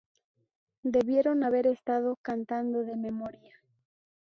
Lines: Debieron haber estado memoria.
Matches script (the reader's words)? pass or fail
fail